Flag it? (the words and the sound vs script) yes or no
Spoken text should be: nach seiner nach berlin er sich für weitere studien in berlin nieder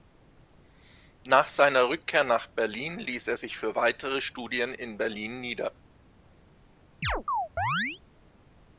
yes